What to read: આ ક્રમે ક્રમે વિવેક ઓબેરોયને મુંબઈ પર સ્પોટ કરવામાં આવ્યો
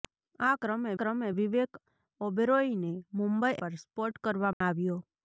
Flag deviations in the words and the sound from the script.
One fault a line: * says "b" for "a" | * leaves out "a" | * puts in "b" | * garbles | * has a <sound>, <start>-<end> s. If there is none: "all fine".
* has a dropout, 4.5-4.6 s